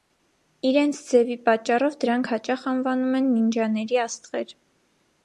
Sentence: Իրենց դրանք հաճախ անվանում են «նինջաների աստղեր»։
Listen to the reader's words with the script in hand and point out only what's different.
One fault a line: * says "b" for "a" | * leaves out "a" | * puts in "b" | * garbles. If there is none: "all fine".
* puts in "ձևի պատճառով"